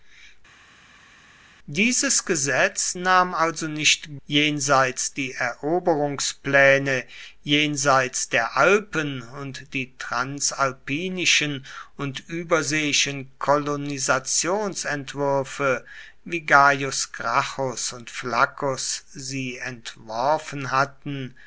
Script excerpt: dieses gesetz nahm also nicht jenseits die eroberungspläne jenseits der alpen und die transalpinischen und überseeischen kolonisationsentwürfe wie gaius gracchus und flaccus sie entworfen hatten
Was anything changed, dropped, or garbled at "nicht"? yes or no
no